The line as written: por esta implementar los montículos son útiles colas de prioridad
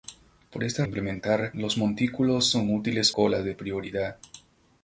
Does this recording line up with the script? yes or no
yes